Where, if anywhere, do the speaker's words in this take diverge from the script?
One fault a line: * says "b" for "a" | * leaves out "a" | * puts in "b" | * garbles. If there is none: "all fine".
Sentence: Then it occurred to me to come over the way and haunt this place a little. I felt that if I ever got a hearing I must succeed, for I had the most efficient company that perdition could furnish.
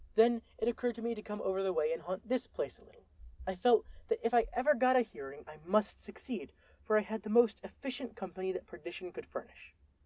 all fine